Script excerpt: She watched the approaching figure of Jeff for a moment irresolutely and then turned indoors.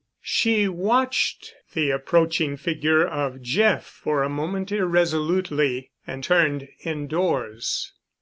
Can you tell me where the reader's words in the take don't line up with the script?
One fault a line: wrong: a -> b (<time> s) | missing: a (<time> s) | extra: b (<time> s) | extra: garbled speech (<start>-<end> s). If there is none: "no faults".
missing: then (6.2 s)